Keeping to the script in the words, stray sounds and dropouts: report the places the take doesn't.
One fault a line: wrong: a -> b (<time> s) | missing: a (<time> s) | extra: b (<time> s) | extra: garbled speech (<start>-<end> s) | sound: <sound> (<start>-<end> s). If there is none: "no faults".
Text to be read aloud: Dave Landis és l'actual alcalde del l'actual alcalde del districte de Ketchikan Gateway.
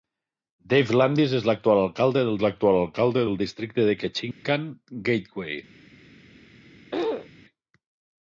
sound: dropout (4.3-4.5 s)
sound: throat clearing (6.9-7.3 s)